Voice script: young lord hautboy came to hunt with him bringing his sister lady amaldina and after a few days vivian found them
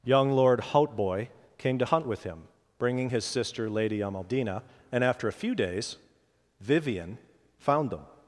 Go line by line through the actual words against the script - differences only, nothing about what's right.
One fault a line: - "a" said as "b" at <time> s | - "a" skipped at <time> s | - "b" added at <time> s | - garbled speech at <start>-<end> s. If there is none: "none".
none